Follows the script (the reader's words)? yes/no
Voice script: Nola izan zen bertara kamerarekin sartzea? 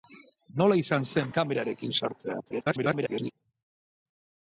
no